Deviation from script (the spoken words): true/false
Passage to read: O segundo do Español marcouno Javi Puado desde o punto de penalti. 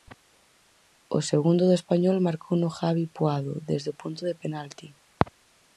false